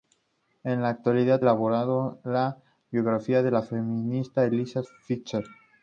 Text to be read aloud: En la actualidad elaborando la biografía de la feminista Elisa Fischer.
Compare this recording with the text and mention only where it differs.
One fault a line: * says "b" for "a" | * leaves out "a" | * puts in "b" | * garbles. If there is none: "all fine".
all fine